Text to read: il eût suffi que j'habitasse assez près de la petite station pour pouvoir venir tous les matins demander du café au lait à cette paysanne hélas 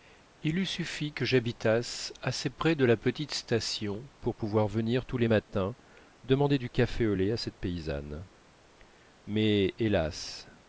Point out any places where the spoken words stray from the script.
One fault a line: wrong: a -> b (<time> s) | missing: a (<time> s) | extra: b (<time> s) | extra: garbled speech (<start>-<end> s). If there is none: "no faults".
extra: mais (9.3 s)